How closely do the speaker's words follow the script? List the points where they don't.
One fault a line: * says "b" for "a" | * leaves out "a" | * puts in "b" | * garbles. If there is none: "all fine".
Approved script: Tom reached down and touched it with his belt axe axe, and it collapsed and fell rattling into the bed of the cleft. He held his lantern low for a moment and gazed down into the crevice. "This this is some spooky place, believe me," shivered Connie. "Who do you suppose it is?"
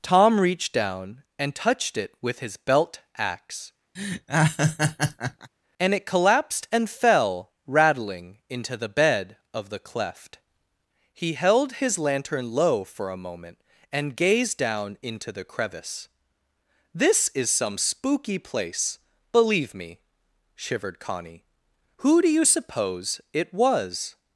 * leaves out "axe"
* leaves out "this"
* says "was" for "is"